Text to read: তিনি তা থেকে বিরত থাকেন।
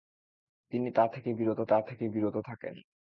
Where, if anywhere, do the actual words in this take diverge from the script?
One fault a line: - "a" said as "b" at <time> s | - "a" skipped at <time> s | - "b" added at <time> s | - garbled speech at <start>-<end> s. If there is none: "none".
- "তা থেকে বিরত" added at 1.6 s